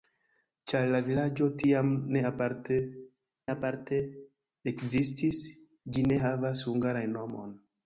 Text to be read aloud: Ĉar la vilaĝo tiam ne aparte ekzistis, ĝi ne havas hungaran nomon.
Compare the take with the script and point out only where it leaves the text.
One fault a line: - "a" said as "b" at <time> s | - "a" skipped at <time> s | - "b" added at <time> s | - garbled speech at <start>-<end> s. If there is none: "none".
- "aparte" added at 3.5 s